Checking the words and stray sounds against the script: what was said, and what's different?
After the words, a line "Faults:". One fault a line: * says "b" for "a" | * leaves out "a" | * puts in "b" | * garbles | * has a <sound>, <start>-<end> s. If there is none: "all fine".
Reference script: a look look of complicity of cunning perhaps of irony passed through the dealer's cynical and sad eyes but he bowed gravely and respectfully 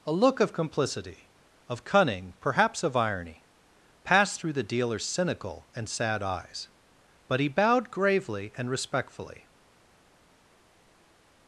a look of complicity of cunning perhaps of irony passed through the dealer's cynical and sad eyes but he bowed gravely and respectfully
Faults:
* leaves out "look"